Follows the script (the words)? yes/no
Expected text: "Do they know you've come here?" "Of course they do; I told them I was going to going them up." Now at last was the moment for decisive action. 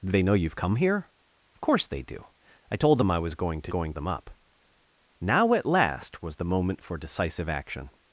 yes